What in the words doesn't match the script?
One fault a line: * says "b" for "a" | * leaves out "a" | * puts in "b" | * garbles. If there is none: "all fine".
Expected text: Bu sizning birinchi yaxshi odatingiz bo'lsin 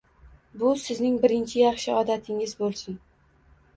all fine